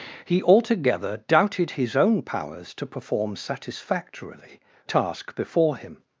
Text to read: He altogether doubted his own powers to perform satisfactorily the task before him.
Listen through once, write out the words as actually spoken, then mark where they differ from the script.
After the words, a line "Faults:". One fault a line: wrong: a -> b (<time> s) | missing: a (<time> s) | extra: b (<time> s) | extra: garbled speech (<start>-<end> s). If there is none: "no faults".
He altogether doubted his own powers to perform satisfactorily task before him.
Faults:
missing: the (4.6 s)